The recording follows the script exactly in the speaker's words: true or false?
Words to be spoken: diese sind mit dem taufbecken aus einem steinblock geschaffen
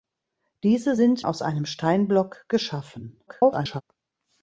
false